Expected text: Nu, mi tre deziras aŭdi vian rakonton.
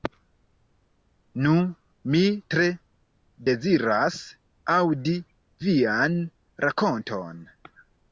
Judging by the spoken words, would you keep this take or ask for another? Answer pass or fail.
pass